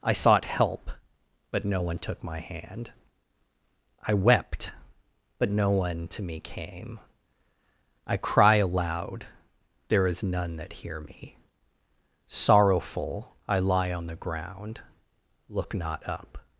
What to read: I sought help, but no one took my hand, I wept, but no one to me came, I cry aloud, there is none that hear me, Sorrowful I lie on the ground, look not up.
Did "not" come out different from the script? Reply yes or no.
no